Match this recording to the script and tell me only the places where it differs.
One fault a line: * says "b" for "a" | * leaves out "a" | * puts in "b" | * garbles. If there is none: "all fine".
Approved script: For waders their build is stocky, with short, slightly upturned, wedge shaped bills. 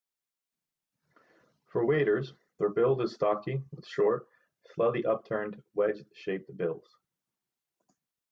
all fine